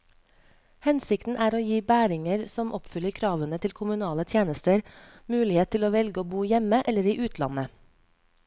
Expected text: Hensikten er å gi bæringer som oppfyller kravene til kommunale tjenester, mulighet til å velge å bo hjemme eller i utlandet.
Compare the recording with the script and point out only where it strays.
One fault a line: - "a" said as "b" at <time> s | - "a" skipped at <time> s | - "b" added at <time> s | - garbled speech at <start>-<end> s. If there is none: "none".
none